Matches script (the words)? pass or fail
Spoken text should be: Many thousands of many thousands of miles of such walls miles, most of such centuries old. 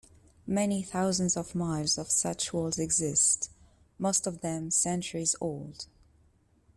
fail